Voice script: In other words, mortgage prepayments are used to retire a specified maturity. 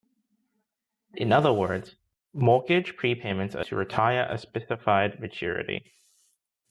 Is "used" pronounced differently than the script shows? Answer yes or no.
yes